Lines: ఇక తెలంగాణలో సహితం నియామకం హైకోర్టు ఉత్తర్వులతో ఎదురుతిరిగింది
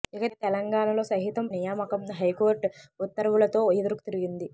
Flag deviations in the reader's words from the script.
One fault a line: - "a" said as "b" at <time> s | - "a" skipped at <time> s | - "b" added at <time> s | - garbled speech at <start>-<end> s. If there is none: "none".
none